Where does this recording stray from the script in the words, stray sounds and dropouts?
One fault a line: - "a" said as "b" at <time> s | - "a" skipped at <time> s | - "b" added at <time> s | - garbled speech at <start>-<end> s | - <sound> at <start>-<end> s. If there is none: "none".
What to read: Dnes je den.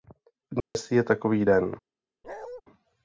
- dropout at 0.6-0.8 s
- "takový" added at 1.0 s
- bark at 2.2-2.6 s